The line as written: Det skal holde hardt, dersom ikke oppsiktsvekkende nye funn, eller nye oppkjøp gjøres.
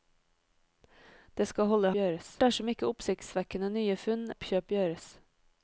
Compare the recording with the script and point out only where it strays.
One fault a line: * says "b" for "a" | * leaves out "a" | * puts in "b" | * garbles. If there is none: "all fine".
* says "gjøres" for "hardt"
* leaves out "eller nye"